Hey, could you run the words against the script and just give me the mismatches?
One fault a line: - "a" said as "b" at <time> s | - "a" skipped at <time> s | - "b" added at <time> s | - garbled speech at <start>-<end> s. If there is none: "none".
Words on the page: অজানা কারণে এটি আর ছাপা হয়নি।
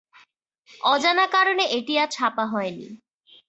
none